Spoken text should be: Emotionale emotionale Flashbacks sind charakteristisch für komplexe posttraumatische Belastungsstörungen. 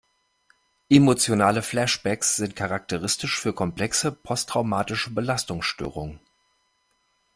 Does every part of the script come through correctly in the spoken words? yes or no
no